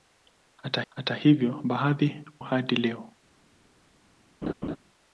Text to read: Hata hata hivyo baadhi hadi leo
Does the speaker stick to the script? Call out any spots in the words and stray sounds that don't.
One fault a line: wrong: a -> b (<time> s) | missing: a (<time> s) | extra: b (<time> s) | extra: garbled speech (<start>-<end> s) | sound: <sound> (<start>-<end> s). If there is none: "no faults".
sound: laugh (4.4-4.8 s)